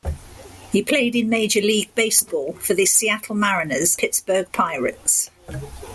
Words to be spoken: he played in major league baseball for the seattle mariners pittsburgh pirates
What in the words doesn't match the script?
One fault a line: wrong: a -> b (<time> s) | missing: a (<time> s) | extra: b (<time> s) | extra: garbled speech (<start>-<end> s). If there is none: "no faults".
no faults